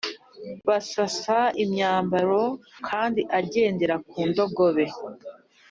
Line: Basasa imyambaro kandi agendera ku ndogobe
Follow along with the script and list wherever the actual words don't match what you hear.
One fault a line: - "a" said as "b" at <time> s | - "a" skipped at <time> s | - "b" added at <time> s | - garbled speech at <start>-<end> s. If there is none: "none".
none